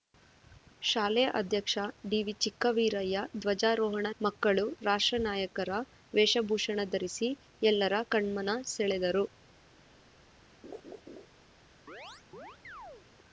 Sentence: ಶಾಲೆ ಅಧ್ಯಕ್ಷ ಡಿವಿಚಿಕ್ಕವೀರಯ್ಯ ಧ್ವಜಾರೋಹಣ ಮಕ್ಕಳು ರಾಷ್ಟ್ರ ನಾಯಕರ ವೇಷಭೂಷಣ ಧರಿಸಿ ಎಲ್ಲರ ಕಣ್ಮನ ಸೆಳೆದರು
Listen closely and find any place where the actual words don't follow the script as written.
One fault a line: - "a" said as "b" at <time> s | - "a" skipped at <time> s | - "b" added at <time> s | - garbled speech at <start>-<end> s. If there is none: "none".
none